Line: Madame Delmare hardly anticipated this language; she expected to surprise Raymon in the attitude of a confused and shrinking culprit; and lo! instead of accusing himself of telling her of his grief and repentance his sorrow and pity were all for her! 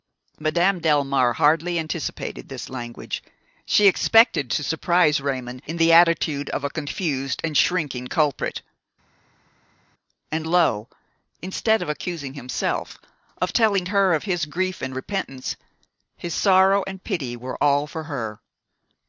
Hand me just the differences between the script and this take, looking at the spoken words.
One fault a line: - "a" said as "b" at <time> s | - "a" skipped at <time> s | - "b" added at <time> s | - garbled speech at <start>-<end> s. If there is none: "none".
none